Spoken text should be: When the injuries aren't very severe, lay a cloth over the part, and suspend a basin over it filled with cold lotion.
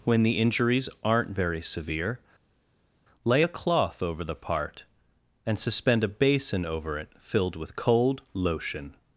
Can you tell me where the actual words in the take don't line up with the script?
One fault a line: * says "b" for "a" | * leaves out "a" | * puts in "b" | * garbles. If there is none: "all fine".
all fine